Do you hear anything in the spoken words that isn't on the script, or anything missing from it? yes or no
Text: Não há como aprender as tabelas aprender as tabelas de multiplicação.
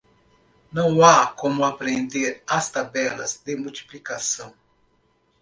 yes